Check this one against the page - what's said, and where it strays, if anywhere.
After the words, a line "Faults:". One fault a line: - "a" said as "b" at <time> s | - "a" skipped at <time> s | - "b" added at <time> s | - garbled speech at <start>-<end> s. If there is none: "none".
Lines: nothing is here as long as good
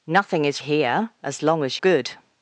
nothing is here as long as good
Faults:
none